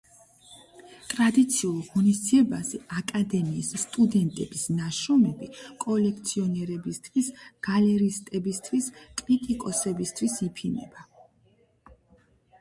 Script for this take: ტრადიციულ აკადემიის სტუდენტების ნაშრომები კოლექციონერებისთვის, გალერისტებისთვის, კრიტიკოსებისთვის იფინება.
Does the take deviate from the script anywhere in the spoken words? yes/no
yes